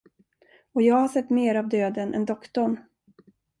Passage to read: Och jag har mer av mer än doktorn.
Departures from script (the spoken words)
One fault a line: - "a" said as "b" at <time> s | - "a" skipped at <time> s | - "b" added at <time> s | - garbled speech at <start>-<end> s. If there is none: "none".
- "sett" added at 1.1 s
- "mer" said as "döden" at 1.7 s